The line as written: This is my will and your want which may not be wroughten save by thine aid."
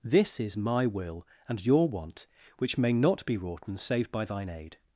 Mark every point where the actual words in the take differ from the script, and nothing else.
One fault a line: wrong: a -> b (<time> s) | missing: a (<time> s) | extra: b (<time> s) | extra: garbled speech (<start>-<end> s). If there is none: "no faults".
no faults